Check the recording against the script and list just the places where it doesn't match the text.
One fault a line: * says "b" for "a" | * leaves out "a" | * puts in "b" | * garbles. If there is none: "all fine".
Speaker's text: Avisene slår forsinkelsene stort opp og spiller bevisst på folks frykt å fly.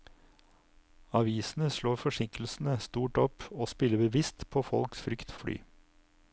all fine